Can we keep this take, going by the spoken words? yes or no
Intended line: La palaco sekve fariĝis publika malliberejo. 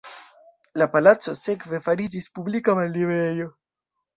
yes